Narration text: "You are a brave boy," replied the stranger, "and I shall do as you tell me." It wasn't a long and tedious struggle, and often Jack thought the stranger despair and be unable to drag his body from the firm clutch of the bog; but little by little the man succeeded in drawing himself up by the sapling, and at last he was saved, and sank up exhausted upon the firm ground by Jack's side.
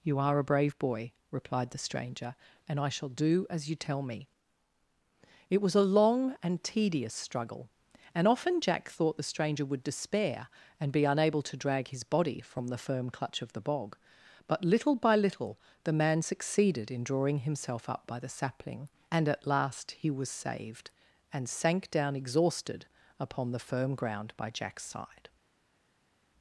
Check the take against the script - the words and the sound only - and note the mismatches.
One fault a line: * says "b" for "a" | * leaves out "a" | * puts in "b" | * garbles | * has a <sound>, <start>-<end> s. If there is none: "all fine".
* says "was" for "wasn't"
* puts in "would"
* says "down" for "up"